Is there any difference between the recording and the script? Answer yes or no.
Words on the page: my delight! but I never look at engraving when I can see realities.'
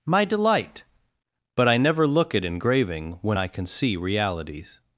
no